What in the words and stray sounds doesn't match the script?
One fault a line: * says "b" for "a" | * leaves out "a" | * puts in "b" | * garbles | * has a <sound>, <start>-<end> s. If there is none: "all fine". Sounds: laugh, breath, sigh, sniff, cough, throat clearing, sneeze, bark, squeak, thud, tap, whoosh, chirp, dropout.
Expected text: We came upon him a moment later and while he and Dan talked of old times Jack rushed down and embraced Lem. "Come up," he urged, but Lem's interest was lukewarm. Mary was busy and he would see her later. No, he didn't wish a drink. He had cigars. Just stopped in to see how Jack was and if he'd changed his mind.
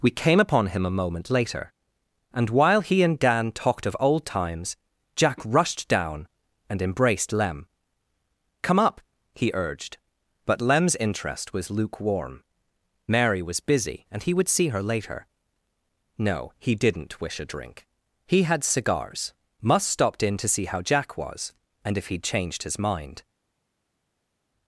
* says "Must" for "Just"